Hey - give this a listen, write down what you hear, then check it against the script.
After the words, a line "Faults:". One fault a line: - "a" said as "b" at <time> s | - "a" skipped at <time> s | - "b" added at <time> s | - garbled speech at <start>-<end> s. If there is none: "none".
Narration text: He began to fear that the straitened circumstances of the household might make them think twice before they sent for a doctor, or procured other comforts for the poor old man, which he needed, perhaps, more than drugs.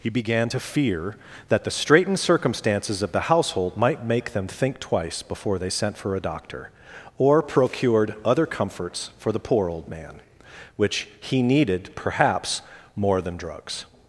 He began to fear that the straitened circumstances of the household might make them think twice before they sent for a doctor, or procured other comforts for the poor old man, which he needed, perhaps, more than drugs.
Faults:
none